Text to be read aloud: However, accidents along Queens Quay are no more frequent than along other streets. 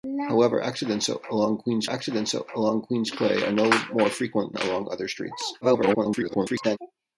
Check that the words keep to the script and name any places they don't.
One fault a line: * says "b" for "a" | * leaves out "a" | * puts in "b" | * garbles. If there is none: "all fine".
* puts in "accidents along Queens"
* leaves out "than"
* garbles